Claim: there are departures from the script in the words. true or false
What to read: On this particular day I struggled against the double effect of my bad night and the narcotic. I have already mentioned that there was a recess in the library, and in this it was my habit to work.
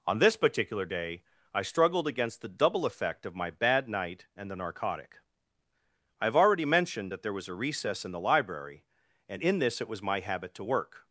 false